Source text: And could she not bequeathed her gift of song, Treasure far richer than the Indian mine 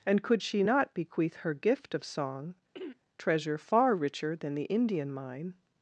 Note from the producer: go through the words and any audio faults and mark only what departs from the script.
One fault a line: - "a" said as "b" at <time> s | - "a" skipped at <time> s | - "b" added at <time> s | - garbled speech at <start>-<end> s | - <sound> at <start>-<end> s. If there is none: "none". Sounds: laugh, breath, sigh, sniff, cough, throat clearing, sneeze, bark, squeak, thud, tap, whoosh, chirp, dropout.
- "bequeathed" said as "bequeath" at 0.9 s
- throat clearing at 2.7-3.0 s